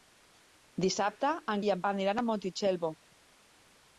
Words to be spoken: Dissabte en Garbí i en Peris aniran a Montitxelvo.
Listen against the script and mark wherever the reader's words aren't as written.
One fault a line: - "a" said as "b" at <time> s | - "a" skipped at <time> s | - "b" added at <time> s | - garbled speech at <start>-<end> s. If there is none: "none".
- "Garbí" skipped at 1.6 s
- "Peris" skipped at 1.8 s